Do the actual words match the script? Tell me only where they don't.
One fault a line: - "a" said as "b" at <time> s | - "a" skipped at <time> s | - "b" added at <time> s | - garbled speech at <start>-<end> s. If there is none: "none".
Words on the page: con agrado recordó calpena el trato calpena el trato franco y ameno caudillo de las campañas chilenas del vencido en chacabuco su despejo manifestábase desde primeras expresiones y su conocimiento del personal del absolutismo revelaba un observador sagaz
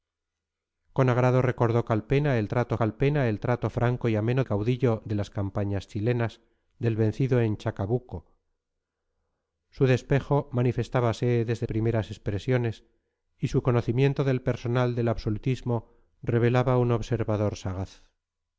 none